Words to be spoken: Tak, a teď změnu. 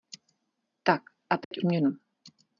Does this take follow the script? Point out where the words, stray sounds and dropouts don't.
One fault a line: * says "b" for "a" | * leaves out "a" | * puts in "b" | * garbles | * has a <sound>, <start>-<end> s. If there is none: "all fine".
* has a dropout, 1.4-1.5 s